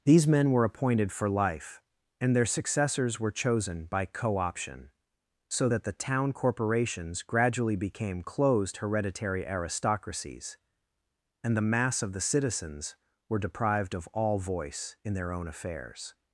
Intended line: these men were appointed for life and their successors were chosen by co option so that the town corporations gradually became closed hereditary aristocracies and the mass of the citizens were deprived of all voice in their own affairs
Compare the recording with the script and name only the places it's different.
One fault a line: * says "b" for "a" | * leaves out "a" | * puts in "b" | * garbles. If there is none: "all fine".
all fine